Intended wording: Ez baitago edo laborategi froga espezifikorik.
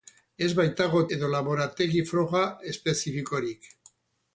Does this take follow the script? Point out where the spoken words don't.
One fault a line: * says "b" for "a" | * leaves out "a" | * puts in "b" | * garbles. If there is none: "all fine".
all fine